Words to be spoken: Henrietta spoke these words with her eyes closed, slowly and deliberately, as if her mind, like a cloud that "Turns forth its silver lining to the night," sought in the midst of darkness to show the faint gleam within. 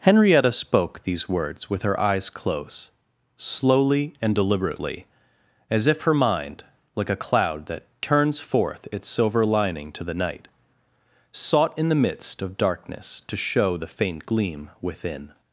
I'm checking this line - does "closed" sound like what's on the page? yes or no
no